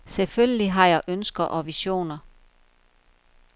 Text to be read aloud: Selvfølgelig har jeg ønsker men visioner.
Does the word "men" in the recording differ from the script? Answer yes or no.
yes